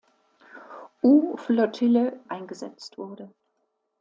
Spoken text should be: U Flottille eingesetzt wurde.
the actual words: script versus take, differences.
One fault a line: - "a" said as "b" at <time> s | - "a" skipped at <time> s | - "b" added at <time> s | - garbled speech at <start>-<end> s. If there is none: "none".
none